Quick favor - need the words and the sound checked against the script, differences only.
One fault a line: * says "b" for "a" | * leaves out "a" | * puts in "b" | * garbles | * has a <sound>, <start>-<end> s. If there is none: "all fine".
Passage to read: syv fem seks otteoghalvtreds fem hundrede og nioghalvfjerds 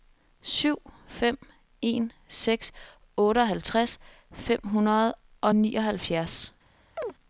* puts in "en"
* has a chirp, 7.0-7.1 s